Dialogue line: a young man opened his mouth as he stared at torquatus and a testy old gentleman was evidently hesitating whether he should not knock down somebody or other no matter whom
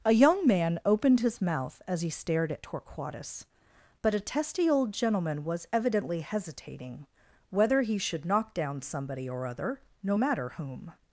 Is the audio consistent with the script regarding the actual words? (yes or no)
no